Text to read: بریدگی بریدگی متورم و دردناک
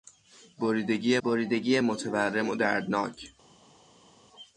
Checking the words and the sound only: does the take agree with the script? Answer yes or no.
yes